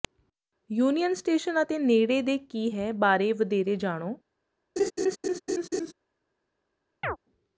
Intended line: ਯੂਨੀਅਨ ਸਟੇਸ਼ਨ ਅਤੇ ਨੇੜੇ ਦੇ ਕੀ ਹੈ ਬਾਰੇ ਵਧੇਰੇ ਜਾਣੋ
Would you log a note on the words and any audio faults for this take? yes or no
yes